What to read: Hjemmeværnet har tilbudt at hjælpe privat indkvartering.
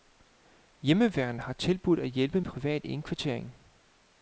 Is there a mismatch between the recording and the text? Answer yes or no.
no